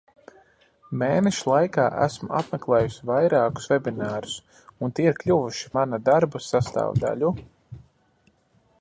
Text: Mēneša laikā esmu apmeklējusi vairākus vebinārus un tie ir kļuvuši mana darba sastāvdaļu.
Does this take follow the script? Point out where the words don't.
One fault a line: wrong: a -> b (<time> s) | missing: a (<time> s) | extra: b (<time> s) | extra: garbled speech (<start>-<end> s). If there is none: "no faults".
no faults